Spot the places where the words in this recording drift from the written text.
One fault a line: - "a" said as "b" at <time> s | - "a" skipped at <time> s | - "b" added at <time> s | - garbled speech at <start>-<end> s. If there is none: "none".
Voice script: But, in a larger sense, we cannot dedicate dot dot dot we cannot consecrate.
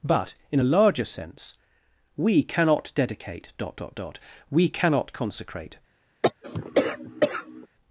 none